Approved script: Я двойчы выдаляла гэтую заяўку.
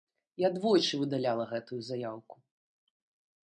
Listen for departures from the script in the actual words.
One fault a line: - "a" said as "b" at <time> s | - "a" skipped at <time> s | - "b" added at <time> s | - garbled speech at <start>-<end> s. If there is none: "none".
none